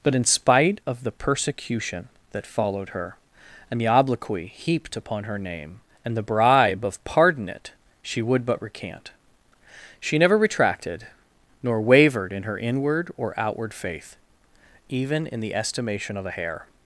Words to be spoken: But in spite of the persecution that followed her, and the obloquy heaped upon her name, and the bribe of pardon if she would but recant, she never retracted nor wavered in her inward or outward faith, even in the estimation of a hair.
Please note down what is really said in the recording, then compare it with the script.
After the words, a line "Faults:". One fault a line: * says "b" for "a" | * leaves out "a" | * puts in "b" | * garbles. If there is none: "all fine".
But in spite of the persecution that followed her, and the obloquy heaped upon her name, and the bribe of pardon it she would but recant, she never retracted nor wavered in her inward or outward faith, even in the estimation of a hair.
Faults:
* says "it" for "if"